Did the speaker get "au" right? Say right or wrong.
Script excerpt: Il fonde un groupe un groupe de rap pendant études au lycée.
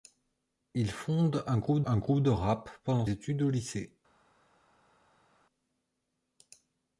right